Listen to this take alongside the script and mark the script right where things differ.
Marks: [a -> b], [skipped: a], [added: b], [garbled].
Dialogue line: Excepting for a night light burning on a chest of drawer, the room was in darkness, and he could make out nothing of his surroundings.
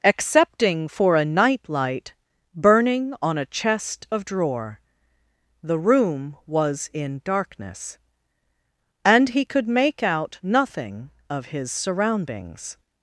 Excepting for a night light burning on a chest of drawer, the room was in darkness, and he could make out nothing of his surroundings.